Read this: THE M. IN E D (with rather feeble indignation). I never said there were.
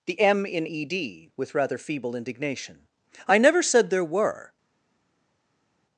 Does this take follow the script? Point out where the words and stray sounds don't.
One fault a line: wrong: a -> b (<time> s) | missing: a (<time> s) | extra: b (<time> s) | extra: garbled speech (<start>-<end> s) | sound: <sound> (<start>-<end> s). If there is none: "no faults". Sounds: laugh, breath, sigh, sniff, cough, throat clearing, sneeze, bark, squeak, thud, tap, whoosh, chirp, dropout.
no faults